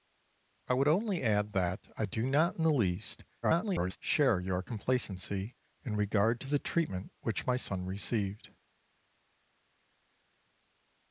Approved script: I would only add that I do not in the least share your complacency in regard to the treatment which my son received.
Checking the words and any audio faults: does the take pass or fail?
fail